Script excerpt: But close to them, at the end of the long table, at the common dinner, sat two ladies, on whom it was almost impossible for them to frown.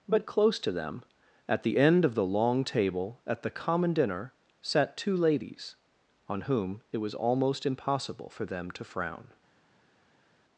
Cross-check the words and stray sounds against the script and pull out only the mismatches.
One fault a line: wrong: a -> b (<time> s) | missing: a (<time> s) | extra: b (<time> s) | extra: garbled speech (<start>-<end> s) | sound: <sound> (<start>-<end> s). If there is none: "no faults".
no faults